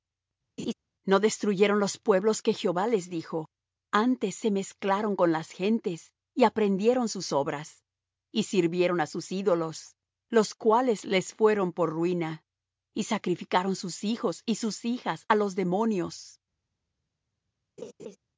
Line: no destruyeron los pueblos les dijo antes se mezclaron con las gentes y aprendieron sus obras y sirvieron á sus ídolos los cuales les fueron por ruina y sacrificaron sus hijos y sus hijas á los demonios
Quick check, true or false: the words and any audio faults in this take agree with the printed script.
false